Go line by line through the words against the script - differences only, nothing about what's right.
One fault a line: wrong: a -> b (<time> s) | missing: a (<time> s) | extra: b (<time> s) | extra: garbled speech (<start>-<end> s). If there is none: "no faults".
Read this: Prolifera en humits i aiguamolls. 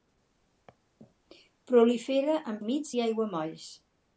no faults